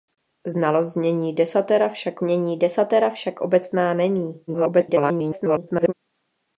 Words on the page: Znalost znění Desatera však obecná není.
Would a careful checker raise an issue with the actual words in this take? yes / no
yes